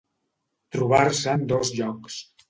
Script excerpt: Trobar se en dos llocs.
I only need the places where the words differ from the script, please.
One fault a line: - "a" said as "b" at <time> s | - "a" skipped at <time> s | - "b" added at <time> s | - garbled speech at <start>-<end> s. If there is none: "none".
none